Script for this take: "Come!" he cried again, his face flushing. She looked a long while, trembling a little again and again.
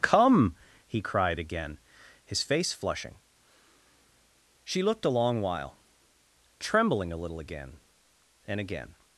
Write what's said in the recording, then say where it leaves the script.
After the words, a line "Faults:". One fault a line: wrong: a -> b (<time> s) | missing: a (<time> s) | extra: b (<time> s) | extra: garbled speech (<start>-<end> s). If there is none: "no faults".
"Come!" he cried again, his face flushing. She looked a long while, trembling a little again and again.
Faults:
no faults